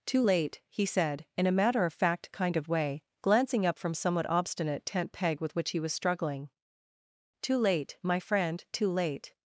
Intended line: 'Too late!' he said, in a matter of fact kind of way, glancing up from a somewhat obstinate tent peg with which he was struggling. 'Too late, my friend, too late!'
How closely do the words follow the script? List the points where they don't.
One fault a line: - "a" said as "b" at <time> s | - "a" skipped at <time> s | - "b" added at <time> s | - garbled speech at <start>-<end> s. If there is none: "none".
- "a" skipped at 3.9 s